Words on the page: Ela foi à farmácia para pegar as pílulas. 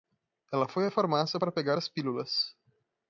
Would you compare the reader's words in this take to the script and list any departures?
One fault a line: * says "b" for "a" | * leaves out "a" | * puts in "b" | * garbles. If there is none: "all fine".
all fine